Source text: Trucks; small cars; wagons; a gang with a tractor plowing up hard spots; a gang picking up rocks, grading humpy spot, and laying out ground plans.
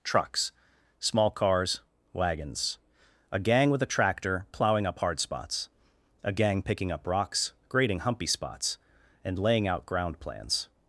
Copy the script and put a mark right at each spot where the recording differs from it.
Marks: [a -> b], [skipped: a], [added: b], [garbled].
Trucks; small cars; wagons; a gang with a tractor plowing up hard spots; a gang picking up rocks, grading humpy [spot, -> spots] and laying out ground plans.